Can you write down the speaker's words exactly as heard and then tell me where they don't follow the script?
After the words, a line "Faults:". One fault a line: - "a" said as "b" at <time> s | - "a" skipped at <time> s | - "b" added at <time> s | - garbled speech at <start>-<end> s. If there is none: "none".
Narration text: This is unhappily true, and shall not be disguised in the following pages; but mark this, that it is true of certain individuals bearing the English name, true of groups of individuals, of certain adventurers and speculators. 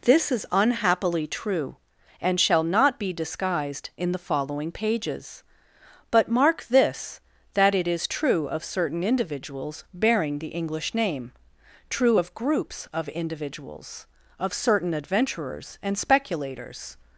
This is unhappily true, and shall not be disguised in the following pages; but mark this, that it is true of certain individuals bearing the English name, true of groups of individuals, of certain adventurers and speculators.
Faults:
none